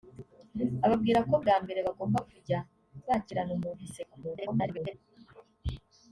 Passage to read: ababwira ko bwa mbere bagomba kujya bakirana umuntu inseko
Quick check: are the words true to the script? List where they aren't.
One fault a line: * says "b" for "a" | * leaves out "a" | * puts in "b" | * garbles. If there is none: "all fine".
* garbles